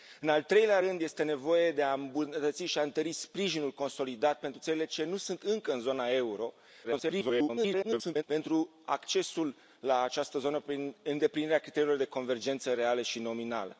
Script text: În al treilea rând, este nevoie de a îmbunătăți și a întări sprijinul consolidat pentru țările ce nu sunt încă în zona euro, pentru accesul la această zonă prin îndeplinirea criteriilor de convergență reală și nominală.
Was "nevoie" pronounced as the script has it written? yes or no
yes